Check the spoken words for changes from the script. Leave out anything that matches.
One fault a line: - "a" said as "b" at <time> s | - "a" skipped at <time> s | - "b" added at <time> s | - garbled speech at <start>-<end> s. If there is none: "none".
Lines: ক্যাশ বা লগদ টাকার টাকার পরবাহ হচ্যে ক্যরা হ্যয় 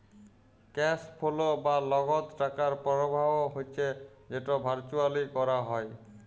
- "ফোলো" added at 1.2 s
- "টাকার" skipped at 2.7 s
- "যেট ভারচুয়ালি" added at 4.3 s